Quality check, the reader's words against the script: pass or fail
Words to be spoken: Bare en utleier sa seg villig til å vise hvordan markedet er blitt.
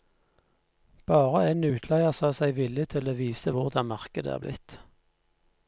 pass